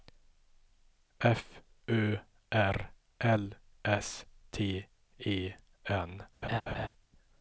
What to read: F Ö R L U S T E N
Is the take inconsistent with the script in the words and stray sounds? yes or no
yes